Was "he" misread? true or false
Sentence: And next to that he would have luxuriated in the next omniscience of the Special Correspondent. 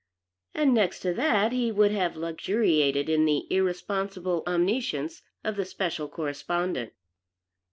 false